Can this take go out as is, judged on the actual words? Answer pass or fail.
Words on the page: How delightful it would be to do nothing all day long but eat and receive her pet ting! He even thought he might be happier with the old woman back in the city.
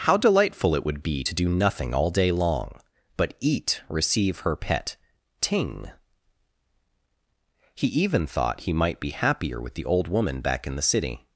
fail